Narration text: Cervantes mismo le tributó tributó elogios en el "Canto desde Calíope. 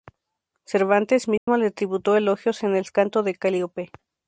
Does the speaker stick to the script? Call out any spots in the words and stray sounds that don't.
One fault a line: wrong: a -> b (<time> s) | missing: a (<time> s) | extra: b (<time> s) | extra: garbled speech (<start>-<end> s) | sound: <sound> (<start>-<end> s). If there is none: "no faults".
sound: dropout (1.4-1.5 s)
missing: tributó (2.2 s)
wrong: desde -> de (3.2 s)